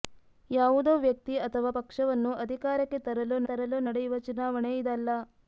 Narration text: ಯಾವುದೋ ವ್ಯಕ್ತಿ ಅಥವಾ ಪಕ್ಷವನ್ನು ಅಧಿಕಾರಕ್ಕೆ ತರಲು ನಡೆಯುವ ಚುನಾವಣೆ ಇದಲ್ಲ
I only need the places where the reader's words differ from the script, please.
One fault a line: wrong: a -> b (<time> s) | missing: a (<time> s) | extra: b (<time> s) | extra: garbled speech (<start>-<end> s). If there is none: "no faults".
extra: ತರಲು (3.5 s)